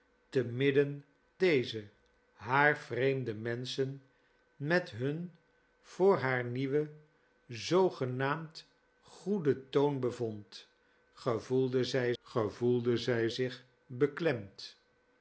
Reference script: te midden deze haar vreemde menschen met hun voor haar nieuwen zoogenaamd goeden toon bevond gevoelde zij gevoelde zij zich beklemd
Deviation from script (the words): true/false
false